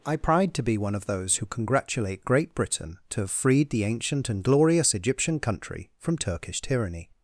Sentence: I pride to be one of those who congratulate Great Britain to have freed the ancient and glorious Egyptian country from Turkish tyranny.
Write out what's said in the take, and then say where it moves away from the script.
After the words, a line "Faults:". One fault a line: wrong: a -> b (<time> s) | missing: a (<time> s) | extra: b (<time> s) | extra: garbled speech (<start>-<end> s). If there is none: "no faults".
I pride to be one of those who congratulate Great Britain to have freed the ancient and glorious Egyptian country from Turkish tyranny.
Faults:
no faults